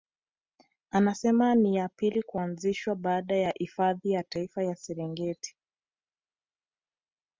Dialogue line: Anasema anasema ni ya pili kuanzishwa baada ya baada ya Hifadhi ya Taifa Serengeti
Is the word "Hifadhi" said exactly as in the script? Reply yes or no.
no